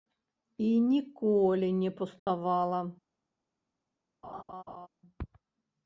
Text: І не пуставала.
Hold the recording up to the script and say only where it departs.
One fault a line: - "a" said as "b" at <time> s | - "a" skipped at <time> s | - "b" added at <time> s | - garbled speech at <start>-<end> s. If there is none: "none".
- "ніколі" added at 0.8 s